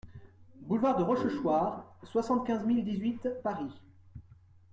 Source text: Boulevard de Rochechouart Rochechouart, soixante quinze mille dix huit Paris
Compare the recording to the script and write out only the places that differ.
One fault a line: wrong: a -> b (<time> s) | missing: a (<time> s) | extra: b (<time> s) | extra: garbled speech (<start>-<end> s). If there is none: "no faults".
missing: Rochechouart (1.9 s)